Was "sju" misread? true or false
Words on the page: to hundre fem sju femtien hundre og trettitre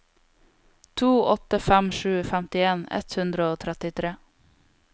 false